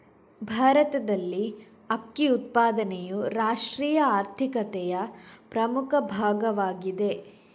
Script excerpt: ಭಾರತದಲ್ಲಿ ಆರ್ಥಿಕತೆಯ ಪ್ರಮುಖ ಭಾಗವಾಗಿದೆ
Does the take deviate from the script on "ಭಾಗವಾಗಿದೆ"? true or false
false